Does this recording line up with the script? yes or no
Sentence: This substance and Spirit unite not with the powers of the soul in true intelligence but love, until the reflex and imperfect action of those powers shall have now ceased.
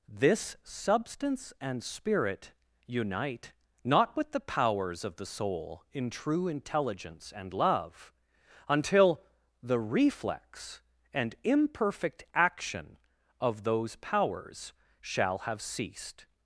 no